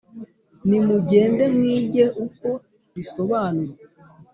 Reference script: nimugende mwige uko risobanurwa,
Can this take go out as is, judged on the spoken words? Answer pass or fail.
pass